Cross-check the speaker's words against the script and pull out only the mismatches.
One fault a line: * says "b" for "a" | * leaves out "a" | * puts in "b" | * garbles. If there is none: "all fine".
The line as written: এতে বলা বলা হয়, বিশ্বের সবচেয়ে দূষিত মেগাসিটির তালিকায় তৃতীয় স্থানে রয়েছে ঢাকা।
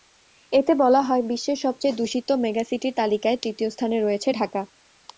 * leaves out "বলা"